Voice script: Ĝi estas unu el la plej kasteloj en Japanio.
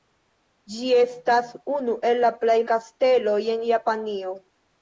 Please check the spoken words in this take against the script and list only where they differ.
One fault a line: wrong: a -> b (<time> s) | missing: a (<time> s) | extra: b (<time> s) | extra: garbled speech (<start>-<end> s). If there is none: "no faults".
no faults